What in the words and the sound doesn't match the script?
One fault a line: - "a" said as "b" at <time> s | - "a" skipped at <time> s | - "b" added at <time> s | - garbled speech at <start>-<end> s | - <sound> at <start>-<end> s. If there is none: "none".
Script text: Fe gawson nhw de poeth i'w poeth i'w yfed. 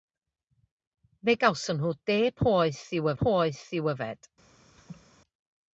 - laugh at 4.8-5.1 s